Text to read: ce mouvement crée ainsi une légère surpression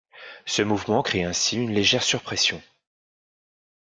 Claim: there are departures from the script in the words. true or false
false